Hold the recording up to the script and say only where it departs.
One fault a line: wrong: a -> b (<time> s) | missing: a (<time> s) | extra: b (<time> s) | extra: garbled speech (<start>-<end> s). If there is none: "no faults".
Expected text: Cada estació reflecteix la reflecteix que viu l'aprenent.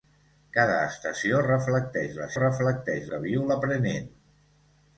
no faults